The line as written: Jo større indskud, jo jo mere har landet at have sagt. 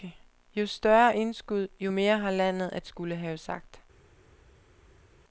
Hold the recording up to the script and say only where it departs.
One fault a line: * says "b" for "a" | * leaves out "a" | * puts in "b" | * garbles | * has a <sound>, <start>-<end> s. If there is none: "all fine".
* leaves out "jo"
* puts in "skulle"